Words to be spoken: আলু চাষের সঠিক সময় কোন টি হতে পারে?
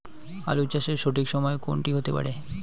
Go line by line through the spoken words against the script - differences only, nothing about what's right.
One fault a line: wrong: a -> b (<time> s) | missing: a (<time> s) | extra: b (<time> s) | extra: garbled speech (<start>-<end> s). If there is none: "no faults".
no faults